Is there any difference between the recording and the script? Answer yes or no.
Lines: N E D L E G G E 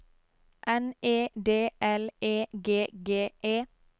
no